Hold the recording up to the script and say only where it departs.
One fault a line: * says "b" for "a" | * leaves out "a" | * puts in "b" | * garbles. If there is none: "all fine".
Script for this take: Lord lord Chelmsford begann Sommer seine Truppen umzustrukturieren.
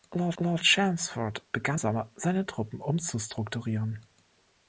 all fine